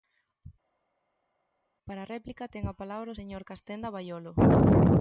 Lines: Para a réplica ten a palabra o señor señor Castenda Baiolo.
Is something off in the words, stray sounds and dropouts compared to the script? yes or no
yes